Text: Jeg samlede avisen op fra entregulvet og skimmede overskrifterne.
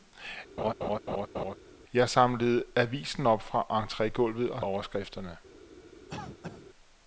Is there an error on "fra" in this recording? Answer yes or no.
no